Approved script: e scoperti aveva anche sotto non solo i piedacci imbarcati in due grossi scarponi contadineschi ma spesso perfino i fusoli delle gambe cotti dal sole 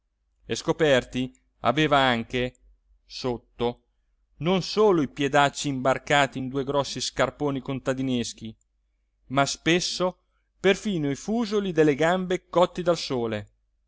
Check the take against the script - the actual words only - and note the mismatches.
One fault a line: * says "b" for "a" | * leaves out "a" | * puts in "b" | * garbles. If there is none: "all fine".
all fine